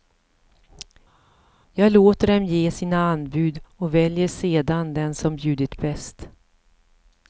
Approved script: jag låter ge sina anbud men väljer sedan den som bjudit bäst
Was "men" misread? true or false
true